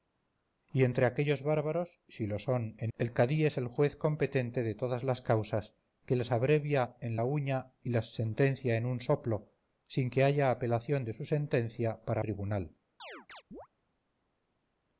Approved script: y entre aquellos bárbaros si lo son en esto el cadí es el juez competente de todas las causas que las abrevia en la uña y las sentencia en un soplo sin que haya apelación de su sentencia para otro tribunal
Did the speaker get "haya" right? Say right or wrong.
right